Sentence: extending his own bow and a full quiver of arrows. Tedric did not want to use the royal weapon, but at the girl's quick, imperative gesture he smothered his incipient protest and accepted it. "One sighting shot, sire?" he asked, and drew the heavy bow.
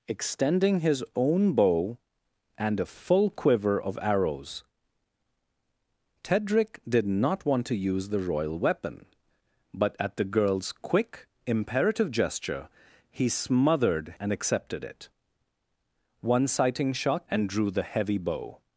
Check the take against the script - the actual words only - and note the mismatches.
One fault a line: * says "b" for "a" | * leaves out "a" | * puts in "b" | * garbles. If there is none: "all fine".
* leaves out "his incipient protest"
* leaves out "sire he asked"